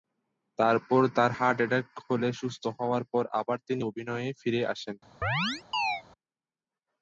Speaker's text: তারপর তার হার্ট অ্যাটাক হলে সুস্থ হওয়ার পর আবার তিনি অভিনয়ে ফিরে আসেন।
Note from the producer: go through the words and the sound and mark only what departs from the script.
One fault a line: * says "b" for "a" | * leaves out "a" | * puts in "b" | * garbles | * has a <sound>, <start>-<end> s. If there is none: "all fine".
* has a chirp, 5.2-6.0 s